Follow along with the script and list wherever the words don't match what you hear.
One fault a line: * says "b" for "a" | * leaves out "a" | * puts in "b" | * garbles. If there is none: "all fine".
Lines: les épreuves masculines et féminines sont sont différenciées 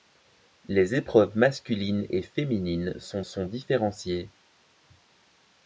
all fine